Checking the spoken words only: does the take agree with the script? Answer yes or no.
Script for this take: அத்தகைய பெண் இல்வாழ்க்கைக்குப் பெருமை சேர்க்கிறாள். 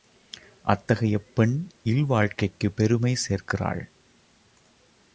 yes